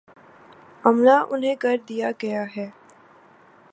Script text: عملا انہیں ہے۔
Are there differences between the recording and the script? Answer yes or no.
yes